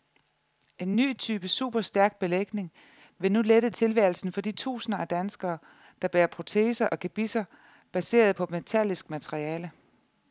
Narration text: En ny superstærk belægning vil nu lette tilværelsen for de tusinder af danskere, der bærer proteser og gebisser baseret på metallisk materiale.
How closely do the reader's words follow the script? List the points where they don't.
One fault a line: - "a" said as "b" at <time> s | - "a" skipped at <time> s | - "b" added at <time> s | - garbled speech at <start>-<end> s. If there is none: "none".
- "type" added at 1.2 s